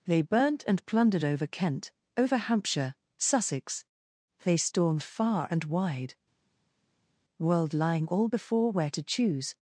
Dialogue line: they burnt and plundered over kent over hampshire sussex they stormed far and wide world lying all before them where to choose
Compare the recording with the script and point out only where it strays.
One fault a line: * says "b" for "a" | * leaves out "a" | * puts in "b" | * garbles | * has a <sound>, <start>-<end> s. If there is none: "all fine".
* leaves out "them"